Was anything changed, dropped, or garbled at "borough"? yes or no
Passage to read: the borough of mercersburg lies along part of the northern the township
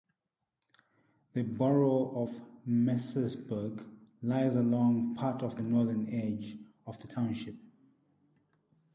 no